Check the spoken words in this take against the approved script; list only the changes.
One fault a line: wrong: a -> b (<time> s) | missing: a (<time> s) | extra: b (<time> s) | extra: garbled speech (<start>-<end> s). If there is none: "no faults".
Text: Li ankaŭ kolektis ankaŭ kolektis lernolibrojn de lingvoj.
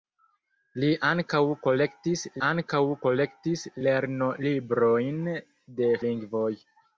no faults